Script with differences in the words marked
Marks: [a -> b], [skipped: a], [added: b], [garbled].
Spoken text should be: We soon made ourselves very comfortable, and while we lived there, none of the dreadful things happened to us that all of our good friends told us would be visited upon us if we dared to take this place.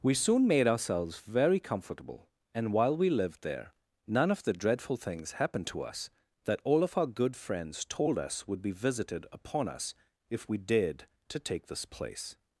We soon made ourselves very comfortable, and while we lived there, none of the dreadful things happened to us that all of our good friends told us would be visited upon us if we dared to take this place.